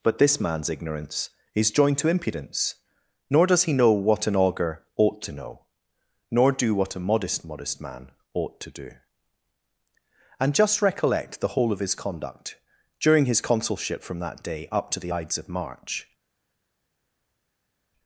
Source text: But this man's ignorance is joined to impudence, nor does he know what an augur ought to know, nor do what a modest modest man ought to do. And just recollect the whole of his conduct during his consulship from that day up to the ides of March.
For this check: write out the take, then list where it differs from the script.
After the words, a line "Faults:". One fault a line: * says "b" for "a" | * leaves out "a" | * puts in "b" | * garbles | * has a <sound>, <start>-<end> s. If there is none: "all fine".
But this man's ignorance is joined to impudence, nor does he know what an augur ought to know, nor do what a modest modest man ought to do. And just recollect the whole of his conduct during his consulship from that day up to the ides of March.
Faults:
all fine